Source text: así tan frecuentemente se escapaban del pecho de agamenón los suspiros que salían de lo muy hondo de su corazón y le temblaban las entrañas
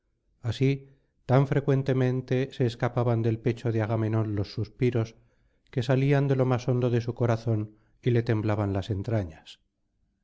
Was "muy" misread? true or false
true